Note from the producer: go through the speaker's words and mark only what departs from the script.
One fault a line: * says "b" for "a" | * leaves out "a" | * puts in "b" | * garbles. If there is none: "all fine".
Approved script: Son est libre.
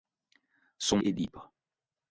all fine